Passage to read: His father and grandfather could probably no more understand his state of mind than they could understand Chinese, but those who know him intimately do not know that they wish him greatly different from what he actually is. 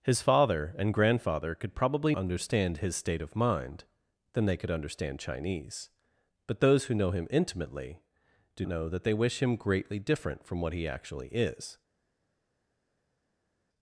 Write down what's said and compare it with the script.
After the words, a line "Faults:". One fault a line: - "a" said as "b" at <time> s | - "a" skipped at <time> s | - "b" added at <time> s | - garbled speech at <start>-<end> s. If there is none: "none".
His father and grandfather could probably understand his state of mind than they could understand Chinese, but those who know him intimately do know that they wish him greatly different from what he actually is.
Faults:
- "no more" skipped at 2.1 s
- "not" skipped at 8.7 s